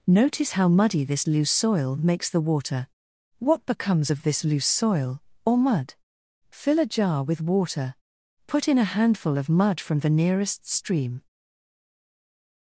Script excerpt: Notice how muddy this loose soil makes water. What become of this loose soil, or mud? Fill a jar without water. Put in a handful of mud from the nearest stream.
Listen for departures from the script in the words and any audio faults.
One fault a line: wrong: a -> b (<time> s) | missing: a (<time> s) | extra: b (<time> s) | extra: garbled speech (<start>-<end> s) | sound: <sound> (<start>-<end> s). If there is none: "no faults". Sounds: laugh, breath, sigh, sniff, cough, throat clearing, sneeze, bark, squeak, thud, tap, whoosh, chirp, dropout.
extra: the (2.3 s)
wrong: become -> becomes (3.7 s)
wrong: without -> with (7.2 s)